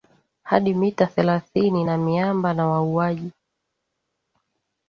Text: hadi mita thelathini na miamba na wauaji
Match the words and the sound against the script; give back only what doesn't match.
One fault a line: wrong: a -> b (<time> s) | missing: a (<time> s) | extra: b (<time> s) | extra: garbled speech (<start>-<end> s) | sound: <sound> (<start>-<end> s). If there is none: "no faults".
no faults